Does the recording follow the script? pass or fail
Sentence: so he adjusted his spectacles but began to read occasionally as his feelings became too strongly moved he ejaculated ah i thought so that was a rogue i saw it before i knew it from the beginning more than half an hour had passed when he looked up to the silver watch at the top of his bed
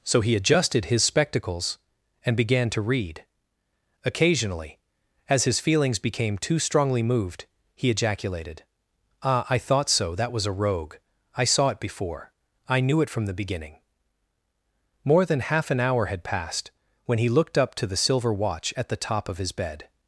fail